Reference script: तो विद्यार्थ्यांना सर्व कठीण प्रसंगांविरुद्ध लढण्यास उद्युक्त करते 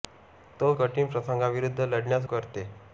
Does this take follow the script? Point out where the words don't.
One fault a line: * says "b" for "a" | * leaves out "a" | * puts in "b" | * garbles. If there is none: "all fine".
* leaves out "विद्यार्थ्यांना सर्व"
* leaves out "उद्युक्त"